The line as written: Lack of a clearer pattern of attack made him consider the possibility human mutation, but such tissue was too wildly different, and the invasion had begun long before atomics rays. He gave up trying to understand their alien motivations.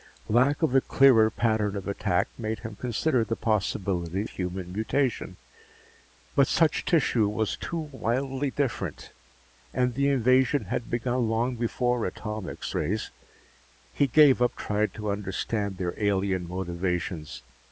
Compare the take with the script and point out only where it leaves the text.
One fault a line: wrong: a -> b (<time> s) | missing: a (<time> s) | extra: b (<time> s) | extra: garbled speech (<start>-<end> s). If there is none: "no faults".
no faults